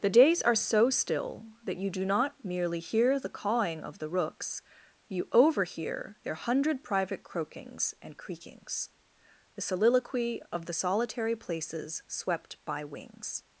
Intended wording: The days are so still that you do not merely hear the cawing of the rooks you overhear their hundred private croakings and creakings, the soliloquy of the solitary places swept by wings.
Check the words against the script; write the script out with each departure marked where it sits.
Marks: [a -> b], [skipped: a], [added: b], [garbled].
The days are so still that you do not merely hear the cawing of the rooks you overhear their hundred private croakings and creakings, the soliloquy of the solitary places swept by wings.